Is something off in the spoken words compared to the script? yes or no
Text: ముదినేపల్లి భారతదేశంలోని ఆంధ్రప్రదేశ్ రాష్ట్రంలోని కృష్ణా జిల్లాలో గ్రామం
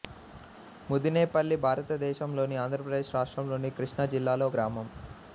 no